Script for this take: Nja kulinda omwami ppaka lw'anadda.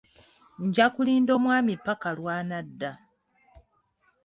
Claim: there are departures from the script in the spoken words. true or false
false